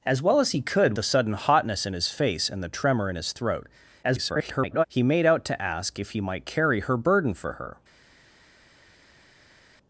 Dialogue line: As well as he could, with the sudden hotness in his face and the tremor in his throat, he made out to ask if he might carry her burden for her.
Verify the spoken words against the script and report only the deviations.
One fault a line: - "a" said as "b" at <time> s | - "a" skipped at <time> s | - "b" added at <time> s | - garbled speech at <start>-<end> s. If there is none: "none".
- "with" skipped at 0.9 s
- garbled speech at 4.0-4.8 s